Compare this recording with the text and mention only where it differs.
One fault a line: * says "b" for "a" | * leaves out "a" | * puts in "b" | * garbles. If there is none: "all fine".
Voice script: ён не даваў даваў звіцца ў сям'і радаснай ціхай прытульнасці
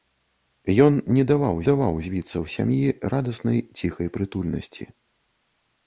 all fine